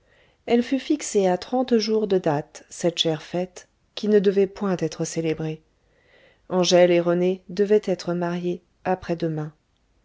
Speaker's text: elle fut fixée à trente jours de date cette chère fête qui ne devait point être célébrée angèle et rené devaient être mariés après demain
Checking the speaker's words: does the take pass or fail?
pass